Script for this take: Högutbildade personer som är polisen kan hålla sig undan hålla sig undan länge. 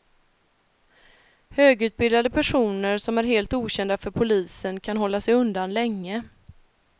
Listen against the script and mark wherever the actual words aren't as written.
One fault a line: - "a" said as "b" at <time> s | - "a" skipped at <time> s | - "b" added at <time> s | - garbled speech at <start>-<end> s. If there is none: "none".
- "polisen kan hålla sig undan" said as "helt okända för polisen kan" at 3.2 s